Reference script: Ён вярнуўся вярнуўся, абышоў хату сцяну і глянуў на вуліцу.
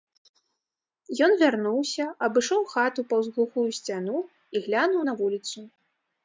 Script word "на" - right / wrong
right